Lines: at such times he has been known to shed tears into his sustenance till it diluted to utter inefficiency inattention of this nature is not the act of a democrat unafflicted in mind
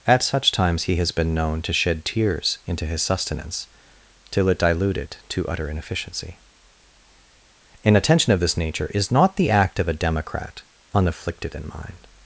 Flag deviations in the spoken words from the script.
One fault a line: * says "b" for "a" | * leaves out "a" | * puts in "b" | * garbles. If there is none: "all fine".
all fine